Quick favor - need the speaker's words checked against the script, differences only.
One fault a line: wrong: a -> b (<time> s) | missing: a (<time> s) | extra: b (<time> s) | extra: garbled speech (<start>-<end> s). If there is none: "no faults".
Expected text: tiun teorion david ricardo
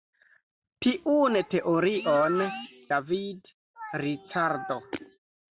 no faults